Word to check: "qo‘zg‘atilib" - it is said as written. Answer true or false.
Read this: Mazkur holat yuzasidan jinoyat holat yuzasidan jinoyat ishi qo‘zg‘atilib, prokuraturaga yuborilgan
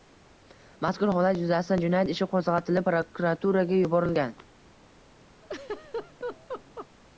true